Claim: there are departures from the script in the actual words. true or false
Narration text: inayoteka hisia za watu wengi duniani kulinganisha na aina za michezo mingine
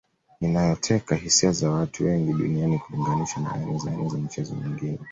true